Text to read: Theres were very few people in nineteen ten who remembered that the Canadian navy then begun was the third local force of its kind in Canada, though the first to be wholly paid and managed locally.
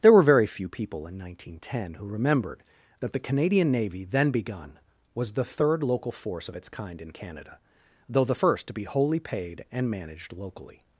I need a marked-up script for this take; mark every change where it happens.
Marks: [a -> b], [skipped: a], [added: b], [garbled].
[Theres -> There] were very few people in nineteen ten who remembered that the Canadian navy then begun was the third local force of its kind in Canada, though the first to be wholly paid and managed locally.